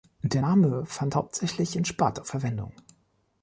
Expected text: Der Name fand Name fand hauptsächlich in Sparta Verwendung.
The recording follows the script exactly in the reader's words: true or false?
false